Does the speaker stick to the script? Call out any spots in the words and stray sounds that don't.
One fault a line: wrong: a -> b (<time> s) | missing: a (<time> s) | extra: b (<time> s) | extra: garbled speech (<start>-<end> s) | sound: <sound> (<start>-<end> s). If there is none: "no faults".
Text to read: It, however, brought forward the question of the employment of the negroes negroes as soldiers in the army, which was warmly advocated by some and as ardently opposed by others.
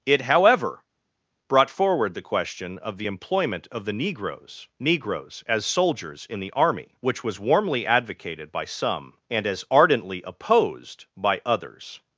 no faults